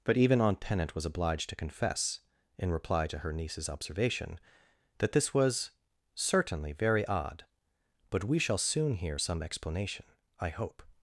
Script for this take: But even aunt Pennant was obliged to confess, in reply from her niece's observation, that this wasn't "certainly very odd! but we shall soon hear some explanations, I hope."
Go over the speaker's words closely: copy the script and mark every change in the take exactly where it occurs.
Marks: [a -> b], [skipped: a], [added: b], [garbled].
But even aunt Pennant was obliged to confess, in reply [from -> to] her niece's observation, that this [wasn't -> was] "certainly very odd! but we shall soon hear some [explanations, -> explanation] I hope."